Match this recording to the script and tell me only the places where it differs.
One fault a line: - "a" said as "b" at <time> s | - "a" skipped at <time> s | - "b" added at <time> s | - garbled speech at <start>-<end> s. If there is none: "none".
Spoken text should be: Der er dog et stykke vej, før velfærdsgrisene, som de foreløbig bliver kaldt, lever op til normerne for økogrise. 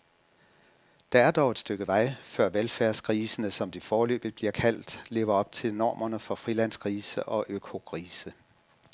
- "frilandsgrise og" added at 6.4 s